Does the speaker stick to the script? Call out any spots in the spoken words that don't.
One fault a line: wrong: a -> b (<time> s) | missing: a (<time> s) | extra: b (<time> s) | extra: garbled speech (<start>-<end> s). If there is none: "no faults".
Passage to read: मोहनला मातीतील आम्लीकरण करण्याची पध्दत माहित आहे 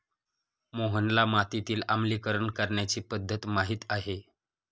no faults